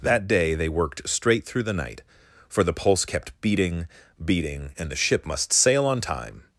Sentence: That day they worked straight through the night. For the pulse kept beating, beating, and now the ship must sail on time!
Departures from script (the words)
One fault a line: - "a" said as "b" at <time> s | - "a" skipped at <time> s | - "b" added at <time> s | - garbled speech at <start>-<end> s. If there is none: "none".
- "now" skipped at 4.9 s